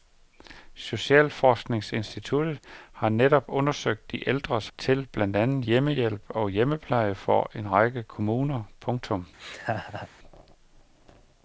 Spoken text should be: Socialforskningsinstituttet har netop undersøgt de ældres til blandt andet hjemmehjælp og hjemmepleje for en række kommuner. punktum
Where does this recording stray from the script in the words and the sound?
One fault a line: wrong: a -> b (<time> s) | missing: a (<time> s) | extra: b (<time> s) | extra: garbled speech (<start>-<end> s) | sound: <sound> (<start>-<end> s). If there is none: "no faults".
sound: laugh (9.4-10.1 s)